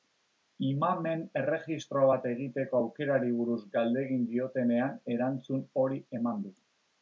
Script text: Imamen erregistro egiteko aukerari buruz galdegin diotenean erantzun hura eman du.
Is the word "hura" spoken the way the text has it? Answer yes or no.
no